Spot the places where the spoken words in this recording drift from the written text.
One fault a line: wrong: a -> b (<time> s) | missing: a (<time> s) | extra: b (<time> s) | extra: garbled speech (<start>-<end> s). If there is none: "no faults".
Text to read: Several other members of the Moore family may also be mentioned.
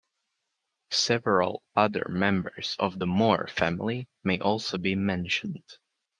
no faults